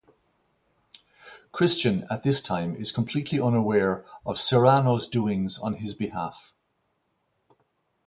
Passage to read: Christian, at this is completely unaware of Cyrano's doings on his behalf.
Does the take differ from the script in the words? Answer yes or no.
yes